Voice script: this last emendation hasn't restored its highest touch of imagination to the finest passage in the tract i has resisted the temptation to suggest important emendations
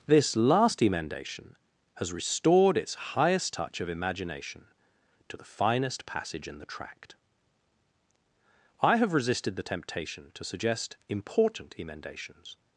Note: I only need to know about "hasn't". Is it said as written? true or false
false